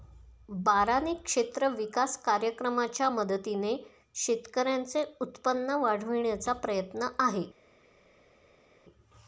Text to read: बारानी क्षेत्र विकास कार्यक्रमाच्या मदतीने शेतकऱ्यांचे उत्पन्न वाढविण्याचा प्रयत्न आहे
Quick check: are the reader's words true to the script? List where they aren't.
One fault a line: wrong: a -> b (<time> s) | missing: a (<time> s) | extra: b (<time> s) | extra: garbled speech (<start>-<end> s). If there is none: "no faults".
no faults